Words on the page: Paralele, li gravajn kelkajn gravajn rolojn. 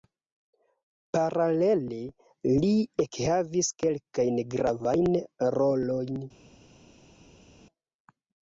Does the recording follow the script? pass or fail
fail